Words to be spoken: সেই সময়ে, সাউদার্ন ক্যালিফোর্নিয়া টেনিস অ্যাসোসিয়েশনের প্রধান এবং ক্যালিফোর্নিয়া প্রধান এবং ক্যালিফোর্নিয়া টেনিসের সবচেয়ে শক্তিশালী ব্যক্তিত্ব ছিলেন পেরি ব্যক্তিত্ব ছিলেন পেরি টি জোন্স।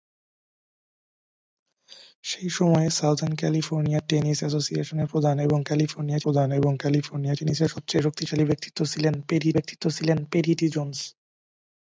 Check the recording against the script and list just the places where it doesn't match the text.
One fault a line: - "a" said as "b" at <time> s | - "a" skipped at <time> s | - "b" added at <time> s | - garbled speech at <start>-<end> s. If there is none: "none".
none